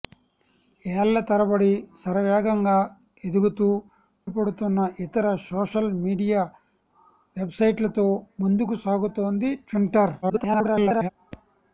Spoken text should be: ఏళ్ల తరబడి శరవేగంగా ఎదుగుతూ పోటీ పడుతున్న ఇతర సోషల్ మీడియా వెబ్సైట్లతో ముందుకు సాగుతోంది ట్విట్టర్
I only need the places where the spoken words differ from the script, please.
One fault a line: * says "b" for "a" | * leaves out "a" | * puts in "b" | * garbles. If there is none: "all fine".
* leaves out "పోటీ"
* garbles